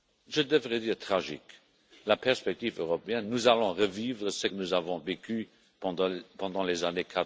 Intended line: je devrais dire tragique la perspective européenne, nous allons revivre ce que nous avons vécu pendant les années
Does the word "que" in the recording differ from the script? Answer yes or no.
yes